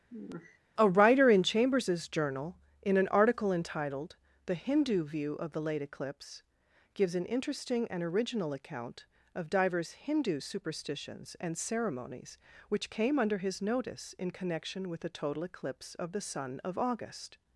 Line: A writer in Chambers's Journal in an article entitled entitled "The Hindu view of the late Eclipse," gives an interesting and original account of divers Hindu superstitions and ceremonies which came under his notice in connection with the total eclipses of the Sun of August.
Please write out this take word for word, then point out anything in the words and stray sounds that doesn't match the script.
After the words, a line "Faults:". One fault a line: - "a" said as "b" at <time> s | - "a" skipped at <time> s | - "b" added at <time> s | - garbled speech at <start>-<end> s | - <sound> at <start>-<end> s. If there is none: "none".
A writer in Chambers's Journal in an article entitled "The Hindu view of the late Eclipse," gives an interesting and original account of divers Hindu superstitions and ceremonies which came under his notice in connection with the total eclipse of the Sun of August.
Faults:
- sigh at 0.1-0.6 s
- "entitled" skipped at 4.2 s
- "eclipses" said as "eclipse" at 15.4 s